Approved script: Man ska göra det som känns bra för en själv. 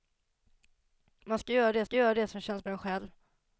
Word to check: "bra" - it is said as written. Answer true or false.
false